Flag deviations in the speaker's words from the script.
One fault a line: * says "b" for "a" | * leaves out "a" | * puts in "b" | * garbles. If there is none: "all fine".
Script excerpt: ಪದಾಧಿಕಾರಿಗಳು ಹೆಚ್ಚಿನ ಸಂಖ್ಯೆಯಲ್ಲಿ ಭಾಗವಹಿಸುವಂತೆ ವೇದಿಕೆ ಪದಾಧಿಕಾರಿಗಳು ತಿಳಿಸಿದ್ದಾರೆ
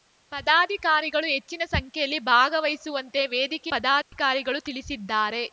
all fine